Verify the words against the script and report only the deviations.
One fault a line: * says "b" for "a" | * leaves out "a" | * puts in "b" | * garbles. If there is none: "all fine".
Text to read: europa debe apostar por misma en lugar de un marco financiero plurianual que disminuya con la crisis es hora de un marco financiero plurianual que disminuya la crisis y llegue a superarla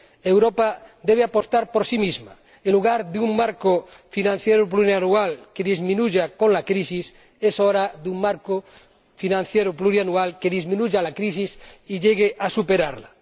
* puts in "sí"